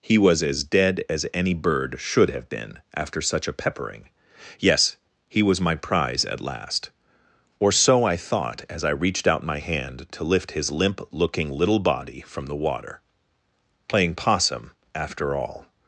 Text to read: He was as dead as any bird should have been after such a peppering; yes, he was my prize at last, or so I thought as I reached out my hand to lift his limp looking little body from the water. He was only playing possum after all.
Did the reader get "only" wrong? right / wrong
wrong